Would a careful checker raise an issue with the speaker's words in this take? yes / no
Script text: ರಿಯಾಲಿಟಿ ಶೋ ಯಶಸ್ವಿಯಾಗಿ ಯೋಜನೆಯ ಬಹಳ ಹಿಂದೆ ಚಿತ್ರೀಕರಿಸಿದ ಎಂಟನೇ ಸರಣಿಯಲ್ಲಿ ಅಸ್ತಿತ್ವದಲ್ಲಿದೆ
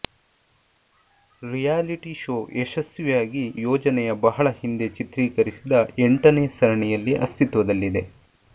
no